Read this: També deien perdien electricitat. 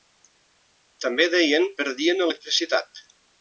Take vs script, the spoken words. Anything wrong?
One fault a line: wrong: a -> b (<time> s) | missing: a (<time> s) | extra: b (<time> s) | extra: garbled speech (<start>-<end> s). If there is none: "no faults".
no faults